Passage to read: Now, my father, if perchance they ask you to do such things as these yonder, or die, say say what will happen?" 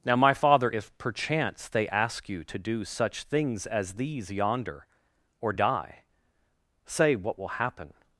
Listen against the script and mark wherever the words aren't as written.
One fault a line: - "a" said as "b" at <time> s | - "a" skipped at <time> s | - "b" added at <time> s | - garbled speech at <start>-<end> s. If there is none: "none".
- "say" skipped at 7.2 s